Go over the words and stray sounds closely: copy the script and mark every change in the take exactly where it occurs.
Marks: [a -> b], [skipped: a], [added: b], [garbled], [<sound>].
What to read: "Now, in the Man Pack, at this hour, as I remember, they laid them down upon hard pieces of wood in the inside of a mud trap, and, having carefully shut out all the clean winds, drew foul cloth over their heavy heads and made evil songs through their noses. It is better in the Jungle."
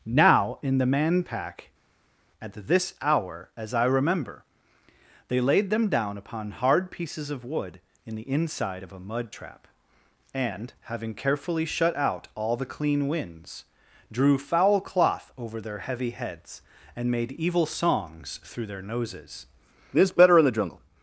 "Now, in the Man Pack, at this hour, as I remember, they laid them down upon hard pieces of wood in the inside of a mud trap, and, having carefully shut out all the clean winds, drew foul cloth over their heavy heads and made evil songs through their noses. [It is -> This] better in the Jungle."